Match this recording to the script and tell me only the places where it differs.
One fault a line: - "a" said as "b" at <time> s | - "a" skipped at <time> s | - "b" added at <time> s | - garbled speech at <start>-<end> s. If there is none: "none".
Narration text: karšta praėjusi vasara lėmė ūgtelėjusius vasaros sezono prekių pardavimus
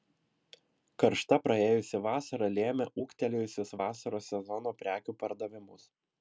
none